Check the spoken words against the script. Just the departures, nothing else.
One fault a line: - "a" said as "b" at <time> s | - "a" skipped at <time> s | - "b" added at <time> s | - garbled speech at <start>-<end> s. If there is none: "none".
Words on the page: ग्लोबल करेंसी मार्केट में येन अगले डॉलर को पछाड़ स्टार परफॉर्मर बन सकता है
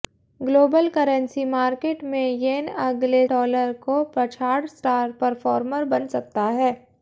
none